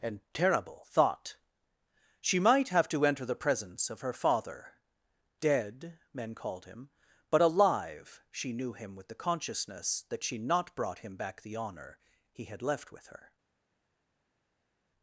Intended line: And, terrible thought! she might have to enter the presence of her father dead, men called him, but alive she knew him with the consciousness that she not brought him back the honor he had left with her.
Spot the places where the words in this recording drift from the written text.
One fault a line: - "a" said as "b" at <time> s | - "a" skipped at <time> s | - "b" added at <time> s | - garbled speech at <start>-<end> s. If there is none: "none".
none